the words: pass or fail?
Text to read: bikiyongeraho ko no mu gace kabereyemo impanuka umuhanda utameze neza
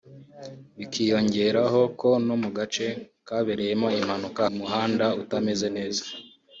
pass